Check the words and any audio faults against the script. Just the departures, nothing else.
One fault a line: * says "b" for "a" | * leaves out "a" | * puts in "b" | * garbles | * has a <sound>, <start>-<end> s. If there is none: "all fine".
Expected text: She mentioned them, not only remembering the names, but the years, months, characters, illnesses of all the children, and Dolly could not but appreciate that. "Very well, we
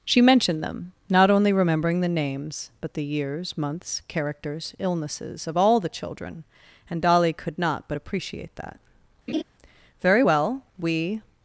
* has a laugh, 9.3-9.4 s